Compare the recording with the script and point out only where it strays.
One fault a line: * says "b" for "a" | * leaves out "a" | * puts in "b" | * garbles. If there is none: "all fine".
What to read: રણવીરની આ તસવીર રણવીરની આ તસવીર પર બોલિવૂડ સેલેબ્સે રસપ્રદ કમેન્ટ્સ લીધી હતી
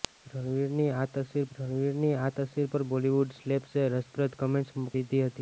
all fine